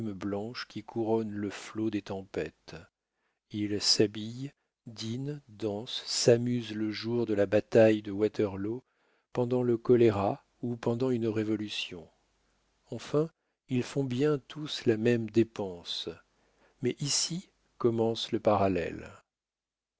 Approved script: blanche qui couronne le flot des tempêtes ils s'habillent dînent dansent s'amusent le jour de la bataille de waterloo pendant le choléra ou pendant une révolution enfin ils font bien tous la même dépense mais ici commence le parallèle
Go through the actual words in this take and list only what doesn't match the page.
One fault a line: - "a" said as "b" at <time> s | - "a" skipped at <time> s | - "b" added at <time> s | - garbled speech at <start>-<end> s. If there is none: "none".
none